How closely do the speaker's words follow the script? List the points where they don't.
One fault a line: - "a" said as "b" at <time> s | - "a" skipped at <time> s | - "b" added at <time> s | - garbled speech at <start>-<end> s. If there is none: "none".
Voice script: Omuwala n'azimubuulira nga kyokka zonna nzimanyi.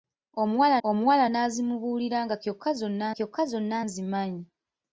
- "omuwala" added at 0.9 s
- "kyokka zonna" added at 3.2 s